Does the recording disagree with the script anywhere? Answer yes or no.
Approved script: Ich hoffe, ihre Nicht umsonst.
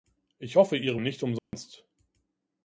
no